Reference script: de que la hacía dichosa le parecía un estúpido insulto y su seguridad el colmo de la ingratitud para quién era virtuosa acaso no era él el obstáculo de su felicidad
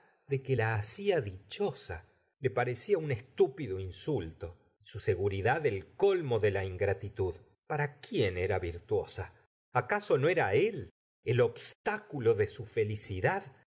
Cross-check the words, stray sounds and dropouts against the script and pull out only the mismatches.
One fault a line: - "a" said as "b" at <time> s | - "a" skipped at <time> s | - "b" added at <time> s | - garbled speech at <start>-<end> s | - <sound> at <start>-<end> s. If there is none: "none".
none